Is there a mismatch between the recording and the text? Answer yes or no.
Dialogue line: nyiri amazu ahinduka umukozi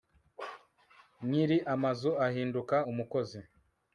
no